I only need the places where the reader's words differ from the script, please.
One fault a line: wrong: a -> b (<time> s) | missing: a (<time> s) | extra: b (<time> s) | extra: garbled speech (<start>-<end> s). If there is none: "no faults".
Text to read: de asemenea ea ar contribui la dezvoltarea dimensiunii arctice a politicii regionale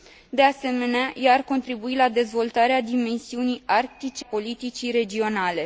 missing: a (4.2 s)